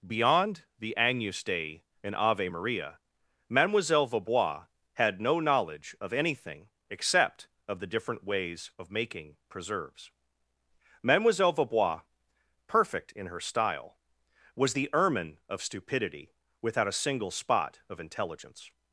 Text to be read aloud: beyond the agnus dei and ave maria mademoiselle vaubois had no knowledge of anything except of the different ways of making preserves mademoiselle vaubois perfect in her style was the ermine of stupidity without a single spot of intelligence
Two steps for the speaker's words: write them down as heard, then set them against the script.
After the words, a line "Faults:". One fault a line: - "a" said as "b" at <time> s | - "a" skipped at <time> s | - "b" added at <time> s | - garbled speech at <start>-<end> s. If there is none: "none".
beyond the agnus dei and ave maria mademoiselle vaubois had no knowledge of anything except of the different ways of making preserves mademoiselle vaubois perfect in her style was the ermine of stupidity without a single spot of intelligence
Faults:
none